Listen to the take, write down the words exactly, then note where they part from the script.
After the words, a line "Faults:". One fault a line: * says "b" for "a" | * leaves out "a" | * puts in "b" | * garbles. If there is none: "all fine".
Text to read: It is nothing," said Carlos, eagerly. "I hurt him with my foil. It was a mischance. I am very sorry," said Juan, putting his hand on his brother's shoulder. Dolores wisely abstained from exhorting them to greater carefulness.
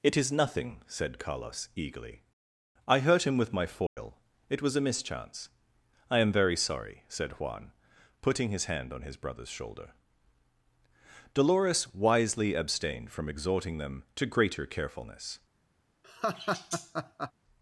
It is nothing," said Carlos, eagerly. "I hurt him with my foil. It was a mischance. I am very sorry," said Juan, putting his hand on his brother's shoulder. Dolores wisely abstained from exhorting them to greater carefulness.
Faults:
all fine